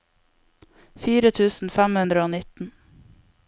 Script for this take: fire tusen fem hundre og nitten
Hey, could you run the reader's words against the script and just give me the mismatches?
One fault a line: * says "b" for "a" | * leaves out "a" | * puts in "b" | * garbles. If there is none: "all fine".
all fine